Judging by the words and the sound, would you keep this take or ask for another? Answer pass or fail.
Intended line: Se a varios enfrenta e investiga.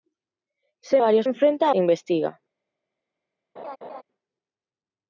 fail